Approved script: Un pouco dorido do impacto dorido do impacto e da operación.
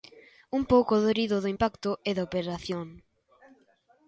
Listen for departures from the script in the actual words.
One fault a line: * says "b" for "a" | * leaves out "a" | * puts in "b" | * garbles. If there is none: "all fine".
* leaves out "dorido do impacto"